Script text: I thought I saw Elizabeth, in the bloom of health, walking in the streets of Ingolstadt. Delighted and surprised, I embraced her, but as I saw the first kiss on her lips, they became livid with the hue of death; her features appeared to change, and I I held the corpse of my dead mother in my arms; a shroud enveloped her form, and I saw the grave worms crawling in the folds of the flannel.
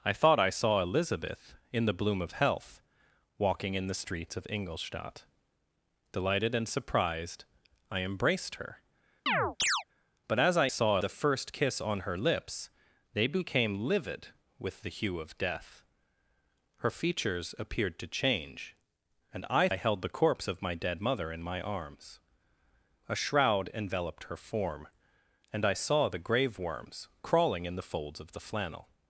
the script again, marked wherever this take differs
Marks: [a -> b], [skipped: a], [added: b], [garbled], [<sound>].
I thought I saw Elizabeth, in the bloom of health, walking in the streets of Ingolstadt. Delighted and surprised, I embraced her, [chirp] but as I saw the first kiss on her lips, they became livid with the hue of death; her features appeared to change, and I I held the corpse of my dead mother in my arms; a shroud enveloped her form, and I saw the grave worms crawling in the folds of the flannel.